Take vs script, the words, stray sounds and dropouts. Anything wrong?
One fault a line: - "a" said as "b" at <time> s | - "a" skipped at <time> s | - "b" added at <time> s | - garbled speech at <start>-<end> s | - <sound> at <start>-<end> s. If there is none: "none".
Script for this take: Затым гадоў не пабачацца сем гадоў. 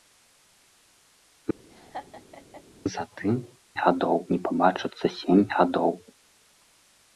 - laugh at 1.7-2.6 s